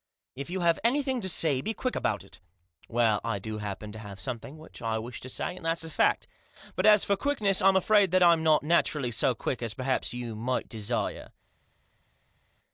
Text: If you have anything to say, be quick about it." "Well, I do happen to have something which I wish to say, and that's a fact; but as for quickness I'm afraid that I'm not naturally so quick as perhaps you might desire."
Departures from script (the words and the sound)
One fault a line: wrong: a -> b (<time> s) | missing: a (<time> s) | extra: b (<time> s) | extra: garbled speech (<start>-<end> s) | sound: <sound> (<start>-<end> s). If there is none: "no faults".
no faults